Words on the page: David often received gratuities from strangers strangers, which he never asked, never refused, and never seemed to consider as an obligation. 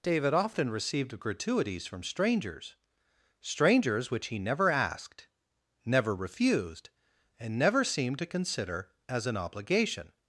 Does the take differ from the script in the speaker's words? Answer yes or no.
no